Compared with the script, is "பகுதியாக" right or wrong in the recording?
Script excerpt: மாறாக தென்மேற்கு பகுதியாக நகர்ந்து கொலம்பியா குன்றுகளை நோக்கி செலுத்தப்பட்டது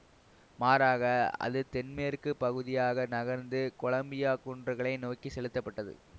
right